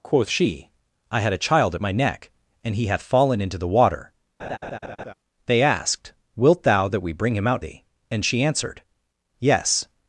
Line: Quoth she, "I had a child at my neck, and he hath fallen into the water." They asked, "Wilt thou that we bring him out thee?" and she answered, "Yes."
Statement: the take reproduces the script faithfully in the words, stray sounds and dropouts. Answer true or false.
false